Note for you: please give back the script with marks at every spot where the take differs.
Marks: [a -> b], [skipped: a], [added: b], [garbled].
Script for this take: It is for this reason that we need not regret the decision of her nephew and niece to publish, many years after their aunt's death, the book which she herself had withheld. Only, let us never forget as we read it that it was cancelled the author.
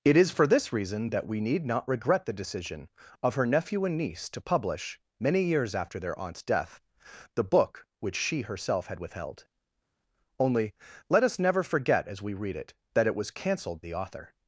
It is for this reason that we need not regret the decision of her nephew and niece to publish, many years after their aunt's death, the book which she herself had withheld. Only, let us never forget as we read it that it was cancelled the author.